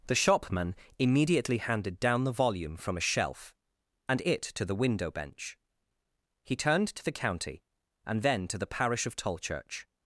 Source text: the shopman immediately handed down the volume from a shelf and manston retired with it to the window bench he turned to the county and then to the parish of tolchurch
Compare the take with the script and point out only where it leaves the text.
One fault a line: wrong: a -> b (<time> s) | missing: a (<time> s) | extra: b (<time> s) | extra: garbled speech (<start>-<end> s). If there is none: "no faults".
missing: manston retired with (4.2 s)